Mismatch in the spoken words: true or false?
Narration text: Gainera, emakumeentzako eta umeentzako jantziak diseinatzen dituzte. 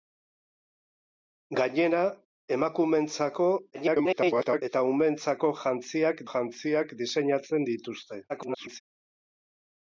true